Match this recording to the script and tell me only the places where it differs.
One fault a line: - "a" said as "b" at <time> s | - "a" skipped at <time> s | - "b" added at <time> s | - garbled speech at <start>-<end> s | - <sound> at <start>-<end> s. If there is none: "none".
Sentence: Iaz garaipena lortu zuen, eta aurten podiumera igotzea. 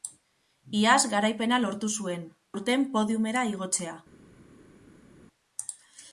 - "eta" skipped at 2.2 s